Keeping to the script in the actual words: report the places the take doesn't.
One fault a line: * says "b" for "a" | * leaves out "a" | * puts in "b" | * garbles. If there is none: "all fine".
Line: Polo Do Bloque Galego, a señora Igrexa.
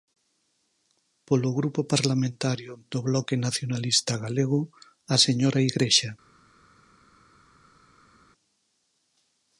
* puts in "Grupo Parlamentario"
* puts in "Nacionalista"